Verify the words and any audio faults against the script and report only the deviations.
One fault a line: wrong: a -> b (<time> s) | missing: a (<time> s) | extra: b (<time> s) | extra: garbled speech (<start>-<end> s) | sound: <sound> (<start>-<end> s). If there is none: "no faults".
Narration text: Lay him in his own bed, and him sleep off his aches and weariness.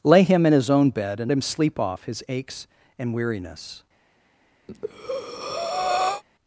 sound: breath (4.7-6.2 s)